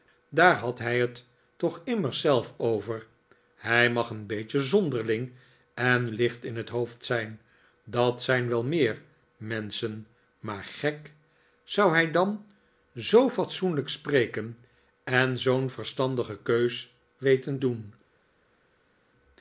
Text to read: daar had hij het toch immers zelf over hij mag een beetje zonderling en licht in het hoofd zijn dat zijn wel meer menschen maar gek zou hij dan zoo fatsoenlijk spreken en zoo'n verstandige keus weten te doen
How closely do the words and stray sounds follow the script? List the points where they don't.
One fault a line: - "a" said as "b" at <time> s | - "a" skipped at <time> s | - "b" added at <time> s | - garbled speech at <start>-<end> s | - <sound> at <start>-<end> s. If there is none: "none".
- "te" skipped at 17.6 s